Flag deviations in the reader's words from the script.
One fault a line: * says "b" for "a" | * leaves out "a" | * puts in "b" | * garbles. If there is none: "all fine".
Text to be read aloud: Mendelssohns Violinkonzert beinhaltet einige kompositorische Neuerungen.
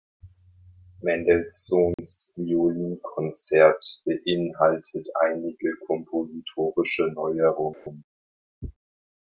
all fine